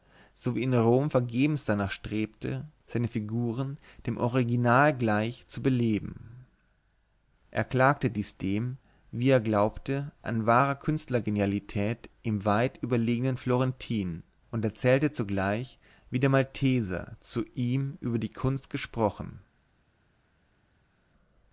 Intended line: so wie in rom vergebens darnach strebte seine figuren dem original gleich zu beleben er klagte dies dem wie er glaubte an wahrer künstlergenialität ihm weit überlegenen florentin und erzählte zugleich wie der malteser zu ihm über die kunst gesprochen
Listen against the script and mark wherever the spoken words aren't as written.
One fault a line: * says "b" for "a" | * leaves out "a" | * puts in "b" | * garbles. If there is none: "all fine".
all fine